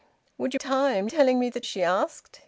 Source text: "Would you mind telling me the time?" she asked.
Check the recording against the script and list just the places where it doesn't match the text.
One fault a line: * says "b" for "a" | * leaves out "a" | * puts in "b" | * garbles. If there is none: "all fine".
* says "time" for "mind"
* leaves out "time"